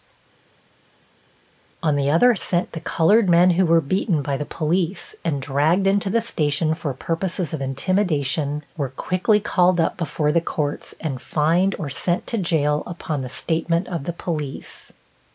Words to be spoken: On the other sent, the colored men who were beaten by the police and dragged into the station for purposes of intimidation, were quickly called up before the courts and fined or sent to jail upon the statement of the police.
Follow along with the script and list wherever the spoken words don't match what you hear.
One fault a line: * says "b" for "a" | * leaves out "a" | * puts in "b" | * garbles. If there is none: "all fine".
all fine